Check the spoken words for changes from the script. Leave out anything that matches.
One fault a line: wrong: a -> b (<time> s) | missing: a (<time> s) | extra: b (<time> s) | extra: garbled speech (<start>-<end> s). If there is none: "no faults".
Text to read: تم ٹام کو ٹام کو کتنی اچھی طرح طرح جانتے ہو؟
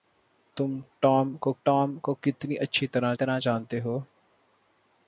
no faults